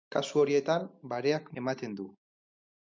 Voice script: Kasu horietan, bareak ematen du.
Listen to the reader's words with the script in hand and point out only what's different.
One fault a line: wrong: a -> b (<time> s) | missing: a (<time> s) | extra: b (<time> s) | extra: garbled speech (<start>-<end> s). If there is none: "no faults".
no faults